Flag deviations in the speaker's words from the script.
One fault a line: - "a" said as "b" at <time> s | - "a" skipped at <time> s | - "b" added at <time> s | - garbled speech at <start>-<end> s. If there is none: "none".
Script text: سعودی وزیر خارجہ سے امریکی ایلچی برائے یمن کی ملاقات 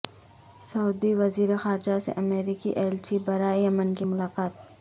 none